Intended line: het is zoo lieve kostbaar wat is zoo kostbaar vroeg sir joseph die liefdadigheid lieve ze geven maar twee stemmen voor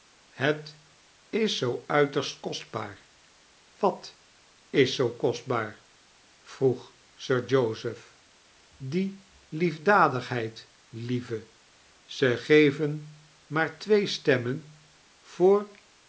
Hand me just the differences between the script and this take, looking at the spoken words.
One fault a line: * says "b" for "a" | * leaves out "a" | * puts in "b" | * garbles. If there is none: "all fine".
* says "uiterst" for "lieve"